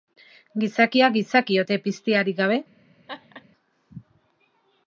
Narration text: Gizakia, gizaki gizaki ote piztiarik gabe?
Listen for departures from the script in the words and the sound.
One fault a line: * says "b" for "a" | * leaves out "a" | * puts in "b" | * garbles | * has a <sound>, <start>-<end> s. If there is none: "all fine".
* leaves out "gizaki"
* has a laugh, 3.1-3.4 s